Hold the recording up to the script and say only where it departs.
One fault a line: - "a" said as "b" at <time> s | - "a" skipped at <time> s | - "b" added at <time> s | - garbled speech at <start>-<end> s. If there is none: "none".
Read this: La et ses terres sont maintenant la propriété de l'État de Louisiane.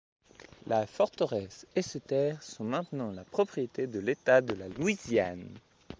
- "forteresse" added at 0.9 s
- "la" added at 4.5 s